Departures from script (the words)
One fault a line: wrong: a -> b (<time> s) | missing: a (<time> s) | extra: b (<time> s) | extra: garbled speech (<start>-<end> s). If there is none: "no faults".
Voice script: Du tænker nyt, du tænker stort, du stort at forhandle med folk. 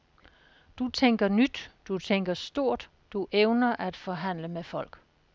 wrong: stort -> evner (3.3 s)